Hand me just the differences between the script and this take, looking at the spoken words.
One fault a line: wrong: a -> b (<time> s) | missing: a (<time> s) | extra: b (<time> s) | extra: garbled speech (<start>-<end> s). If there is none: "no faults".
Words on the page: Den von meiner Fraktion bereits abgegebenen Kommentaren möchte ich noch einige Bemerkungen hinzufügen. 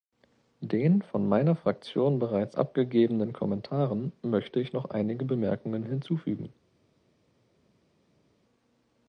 no faults